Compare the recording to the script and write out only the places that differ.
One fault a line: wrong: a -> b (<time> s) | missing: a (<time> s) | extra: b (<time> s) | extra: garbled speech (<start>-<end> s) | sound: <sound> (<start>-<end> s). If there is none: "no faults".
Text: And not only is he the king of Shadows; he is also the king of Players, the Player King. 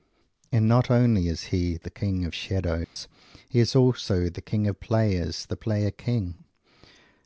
sound: dropout (2.8-3.0 s)